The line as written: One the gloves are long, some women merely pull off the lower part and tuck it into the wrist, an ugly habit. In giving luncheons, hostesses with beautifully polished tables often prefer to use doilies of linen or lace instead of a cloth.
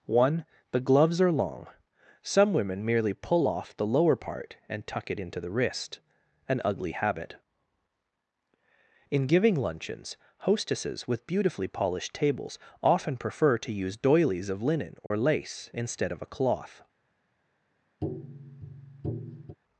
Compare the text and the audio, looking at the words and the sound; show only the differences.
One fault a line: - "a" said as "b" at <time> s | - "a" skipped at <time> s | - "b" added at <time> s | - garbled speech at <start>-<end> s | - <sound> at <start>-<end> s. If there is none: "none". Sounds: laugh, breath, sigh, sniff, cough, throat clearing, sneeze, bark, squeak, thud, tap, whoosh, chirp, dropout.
- dropout at 15.1-15.1 s
- tap at 18.0-19.6 s